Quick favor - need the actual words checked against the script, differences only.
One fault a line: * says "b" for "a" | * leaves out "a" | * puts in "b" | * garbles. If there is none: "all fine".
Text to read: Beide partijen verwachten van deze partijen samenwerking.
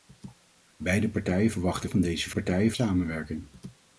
all fine